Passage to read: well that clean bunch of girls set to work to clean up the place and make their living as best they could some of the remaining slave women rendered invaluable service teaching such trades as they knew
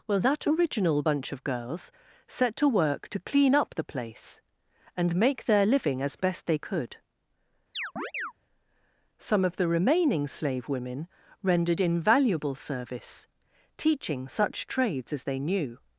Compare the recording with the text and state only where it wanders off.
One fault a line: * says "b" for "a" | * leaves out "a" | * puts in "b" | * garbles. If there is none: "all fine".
* says "original" for "clean"